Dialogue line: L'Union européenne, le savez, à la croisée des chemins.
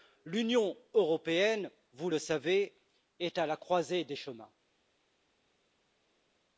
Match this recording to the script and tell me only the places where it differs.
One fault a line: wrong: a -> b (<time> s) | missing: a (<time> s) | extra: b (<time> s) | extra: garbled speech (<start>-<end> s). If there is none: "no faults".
extra: vous (1.9 s)
extra: est (3.2 s)